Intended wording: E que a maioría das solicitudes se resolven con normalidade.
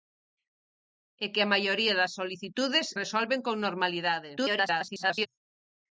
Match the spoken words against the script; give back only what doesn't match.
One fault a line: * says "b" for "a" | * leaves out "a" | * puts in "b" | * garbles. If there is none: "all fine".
* leaves out "se"
* garbles